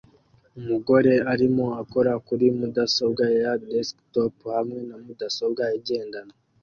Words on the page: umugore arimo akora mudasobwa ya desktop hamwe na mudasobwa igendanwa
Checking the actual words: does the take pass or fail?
fail